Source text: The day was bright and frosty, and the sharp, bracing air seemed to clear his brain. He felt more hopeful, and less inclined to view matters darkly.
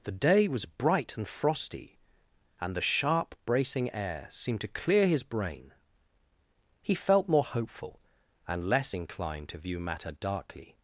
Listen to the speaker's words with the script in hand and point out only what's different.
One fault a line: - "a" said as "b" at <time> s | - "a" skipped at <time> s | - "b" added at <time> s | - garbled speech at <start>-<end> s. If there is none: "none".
- "matters" said as "matter" at 9.8 s